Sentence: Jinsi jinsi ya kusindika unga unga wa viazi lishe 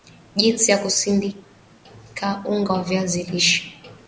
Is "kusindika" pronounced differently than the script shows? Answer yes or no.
no